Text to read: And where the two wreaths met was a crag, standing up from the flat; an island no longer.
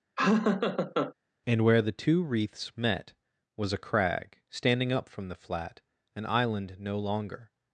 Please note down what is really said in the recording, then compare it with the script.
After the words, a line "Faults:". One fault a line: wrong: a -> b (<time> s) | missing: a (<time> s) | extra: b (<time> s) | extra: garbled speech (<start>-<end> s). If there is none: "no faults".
And where the two wreaths met was a crag, standing up from the flat; an island no longer.
Faults:
no faults